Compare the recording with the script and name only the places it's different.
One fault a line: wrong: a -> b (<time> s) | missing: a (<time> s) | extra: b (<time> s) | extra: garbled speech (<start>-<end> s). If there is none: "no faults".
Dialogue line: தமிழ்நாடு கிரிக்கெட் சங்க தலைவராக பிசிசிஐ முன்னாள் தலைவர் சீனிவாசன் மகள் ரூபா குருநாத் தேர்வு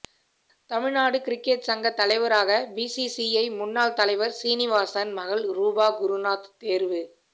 no faults